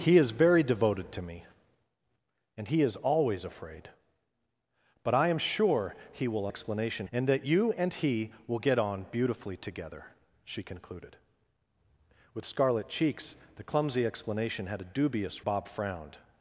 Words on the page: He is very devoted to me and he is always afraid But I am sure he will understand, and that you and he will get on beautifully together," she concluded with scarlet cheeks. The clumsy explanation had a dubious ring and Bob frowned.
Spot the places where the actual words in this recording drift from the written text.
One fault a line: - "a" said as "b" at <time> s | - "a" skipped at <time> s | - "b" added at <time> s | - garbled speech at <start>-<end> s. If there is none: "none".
- "understand" said as "explanation" at 6.5 s
- "ring and" skipped at 15.5 s